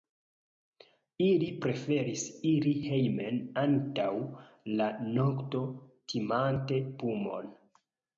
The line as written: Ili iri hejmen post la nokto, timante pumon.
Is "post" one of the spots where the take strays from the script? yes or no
yes